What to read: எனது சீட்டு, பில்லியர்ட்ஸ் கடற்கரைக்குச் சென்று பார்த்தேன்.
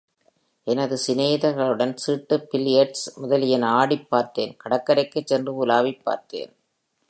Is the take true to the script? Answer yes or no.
no